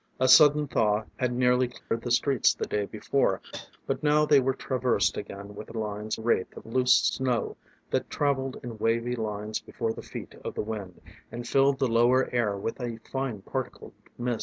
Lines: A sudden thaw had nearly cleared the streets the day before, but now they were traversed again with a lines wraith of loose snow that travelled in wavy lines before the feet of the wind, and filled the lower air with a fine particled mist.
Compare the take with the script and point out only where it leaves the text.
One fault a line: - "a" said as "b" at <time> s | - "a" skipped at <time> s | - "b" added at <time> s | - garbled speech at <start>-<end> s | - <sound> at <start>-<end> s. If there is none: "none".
- dropout at 1.8-1.9 s
- cough at 3.5-3.7 s